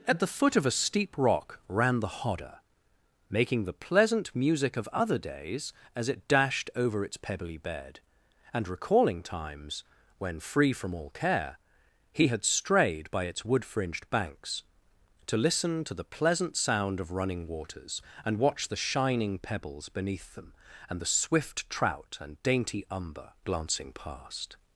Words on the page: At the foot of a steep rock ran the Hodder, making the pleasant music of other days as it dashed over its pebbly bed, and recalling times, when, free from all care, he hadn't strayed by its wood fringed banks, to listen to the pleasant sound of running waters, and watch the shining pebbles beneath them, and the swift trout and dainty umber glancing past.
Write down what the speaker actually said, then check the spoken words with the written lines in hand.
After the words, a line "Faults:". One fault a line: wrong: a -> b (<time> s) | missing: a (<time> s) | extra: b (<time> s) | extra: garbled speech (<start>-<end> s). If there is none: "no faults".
At the foot of a steep rock ran the Hodder, making the pleasant music of other days as it dashed over its pebbly bed, and recalling times, when, free from all care, he had strayed by its wood fringed banks, to listen to the pleasant sound of running waters, and watch the shining pebbles beneath them, and the swift trout and dainty umber glancing past.
Faults:
wrong: hadn't -> had (12.3 s)